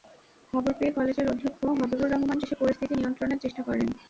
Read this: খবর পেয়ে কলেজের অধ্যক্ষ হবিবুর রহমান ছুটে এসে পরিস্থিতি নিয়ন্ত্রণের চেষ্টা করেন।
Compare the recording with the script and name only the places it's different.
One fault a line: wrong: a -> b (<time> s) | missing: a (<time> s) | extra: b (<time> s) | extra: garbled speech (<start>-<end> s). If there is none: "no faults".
missing: ছুটে (2.4 s)